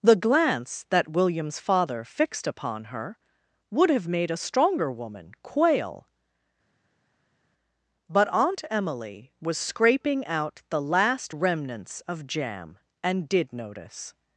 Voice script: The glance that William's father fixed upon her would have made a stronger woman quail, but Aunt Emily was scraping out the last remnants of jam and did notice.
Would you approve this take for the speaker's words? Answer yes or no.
yes